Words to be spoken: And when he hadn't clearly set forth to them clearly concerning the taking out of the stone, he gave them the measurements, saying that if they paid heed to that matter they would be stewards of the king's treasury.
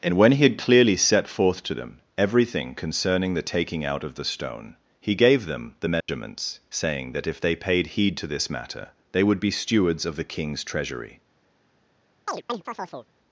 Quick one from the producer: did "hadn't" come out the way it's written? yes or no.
no